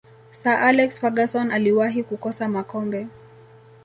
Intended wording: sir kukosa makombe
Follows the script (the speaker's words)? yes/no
no